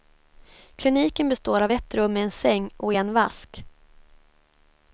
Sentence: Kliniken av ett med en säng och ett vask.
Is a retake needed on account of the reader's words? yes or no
yes